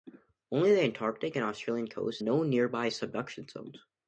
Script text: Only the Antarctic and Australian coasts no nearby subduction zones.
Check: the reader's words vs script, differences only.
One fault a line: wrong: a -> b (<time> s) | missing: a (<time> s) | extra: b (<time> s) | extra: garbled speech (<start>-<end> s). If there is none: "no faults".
no faults